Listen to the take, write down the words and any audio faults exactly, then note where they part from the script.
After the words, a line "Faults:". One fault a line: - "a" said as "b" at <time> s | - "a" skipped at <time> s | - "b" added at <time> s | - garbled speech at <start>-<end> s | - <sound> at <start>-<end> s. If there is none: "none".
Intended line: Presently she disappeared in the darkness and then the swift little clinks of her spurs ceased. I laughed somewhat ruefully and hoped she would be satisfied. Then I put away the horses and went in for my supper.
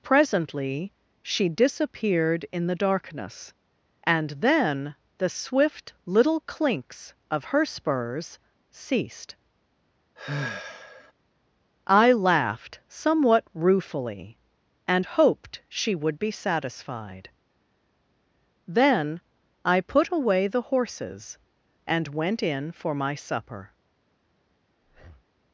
Presently she disappeared in the darkness and then the swift little clinks of her spurs ceased. I laughed somewhat ruefully and hoped she would be satisfied. Then I put away the horses and went in for my supper.
Faults:
- sigh at 10.2-11.1 s
- breath at 24.8-25.3 s